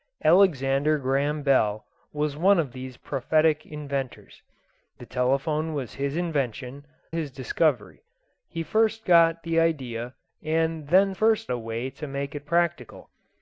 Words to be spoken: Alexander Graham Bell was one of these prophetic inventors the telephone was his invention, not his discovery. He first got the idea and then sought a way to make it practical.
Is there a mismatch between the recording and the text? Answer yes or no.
yes